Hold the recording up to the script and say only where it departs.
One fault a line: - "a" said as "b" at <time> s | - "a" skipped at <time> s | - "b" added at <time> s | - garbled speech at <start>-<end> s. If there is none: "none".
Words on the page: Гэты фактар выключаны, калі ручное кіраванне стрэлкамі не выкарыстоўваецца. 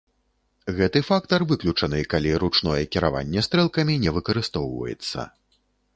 none